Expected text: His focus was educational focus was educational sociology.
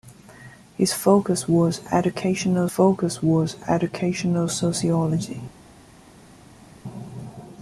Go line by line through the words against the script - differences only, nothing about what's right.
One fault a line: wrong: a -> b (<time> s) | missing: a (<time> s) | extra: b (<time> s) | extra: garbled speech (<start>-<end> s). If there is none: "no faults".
no faults